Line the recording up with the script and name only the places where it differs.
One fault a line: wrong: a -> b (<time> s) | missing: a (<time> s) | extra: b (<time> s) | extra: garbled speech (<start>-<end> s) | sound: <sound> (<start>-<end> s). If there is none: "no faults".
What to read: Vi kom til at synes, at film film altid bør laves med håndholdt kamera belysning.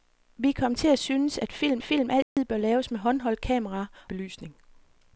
sound: dropout (2.2-2.4 s)